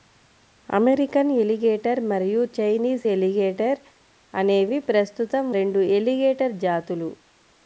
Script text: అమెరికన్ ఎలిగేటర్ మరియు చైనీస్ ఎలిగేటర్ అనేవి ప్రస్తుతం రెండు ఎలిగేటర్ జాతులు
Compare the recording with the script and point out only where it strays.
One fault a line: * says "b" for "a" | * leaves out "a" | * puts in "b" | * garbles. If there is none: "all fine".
all fine